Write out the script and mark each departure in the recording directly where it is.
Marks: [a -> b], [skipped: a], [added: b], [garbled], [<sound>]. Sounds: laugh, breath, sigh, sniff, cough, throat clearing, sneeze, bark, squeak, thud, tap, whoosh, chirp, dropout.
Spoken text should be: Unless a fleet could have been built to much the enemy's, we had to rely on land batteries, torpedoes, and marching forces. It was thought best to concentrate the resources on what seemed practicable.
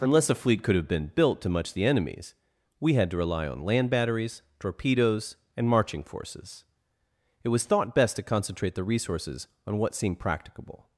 Unless a fleet could have been built to much the enemy's, we had to rely on land batteries, torpedoes, and marching forces. It was thought best to concentrate the resources on what seemed practicable.